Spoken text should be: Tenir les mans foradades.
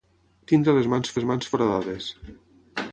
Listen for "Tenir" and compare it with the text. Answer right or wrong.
right